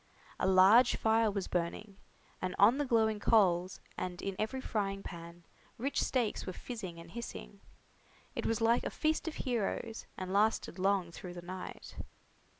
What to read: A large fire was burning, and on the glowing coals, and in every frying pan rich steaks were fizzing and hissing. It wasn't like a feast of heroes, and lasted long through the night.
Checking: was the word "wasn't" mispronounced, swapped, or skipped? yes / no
yes